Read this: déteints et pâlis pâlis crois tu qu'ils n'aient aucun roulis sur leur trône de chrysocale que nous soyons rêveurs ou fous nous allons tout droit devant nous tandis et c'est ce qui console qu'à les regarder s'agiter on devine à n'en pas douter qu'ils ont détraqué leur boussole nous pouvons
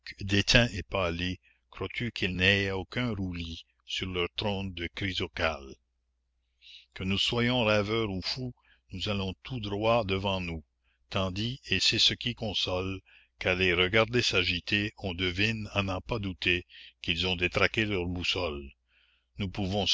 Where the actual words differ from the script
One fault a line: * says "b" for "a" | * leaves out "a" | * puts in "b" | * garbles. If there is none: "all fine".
* leaves out "pâlis"